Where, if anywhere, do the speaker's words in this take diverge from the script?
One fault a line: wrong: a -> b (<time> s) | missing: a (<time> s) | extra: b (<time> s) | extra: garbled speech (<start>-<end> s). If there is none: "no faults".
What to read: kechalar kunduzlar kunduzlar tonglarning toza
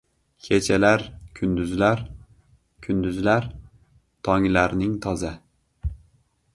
no faults